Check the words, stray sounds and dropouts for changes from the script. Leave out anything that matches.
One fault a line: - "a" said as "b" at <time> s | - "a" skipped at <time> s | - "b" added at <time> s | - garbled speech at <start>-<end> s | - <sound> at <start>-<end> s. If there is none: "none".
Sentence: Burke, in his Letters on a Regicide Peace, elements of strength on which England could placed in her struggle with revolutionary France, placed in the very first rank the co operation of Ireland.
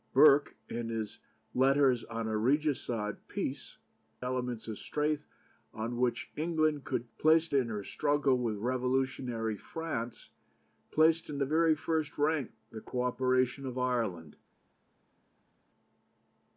none